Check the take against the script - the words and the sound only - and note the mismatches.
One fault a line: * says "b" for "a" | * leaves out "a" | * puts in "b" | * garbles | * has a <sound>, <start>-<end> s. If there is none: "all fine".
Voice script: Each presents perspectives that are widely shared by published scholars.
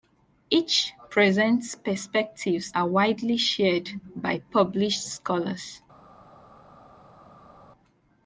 * leaves out "that"